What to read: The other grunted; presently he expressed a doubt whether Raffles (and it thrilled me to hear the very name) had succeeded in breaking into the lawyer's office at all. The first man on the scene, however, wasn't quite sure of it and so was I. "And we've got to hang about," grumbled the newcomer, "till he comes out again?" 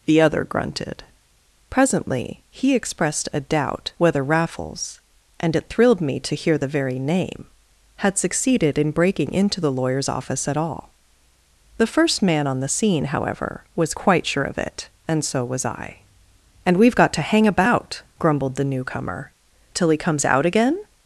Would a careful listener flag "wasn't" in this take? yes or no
yes